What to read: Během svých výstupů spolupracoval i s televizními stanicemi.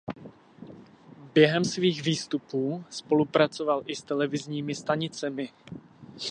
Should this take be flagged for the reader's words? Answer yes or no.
no